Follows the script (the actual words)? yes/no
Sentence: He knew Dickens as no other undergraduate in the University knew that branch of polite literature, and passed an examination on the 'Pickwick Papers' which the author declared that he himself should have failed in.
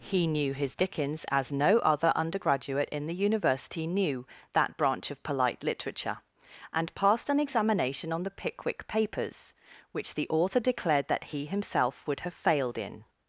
no